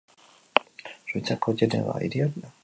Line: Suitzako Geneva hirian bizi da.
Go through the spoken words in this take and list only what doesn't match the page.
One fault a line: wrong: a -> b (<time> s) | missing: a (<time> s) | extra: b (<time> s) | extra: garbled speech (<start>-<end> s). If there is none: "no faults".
missing: bizi (2.3 s)